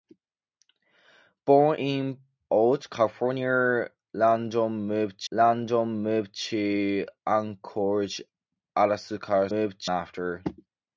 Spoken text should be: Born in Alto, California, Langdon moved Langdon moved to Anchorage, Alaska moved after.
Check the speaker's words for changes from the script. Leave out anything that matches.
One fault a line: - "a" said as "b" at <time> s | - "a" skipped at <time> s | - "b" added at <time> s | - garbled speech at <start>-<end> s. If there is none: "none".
none